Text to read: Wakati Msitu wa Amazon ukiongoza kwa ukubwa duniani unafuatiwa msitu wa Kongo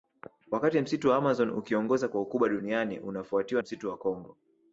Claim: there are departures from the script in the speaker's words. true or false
false